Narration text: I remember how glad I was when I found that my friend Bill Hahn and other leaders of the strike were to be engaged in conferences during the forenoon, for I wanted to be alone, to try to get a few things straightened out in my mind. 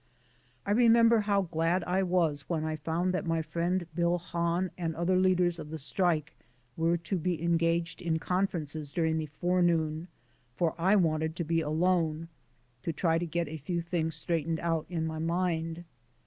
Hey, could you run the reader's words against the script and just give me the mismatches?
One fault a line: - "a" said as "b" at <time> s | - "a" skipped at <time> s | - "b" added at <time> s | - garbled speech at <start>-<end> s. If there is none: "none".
none